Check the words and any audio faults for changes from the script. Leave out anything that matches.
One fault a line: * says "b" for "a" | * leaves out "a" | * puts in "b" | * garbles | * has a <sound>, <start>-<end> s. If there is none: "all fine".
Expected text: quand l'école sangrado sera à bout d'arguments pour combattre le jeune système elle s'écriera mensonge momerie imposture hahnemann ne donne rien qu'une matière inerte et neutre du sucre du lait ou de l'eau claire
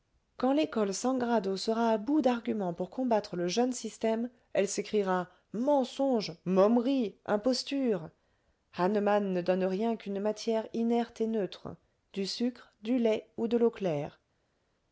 all fine